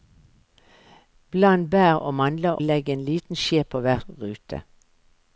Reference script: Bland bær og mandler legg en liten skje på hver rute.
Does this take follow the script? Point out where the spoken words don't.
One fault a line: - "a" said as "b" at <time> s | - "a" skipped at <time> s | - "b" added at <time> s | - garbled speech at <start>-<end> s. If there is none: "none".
none